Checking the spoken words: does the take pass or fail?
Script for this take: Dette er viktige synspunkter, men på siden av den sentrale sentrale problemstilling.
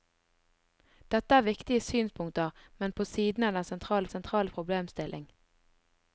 pass